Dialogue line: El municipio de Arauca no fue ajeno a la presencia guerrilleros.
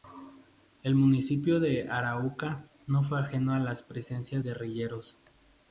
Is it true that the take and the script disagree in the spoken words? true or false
false